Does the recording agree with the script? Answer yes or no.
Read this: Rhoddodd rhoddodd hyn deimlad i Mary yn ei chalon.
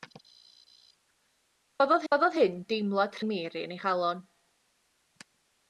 yes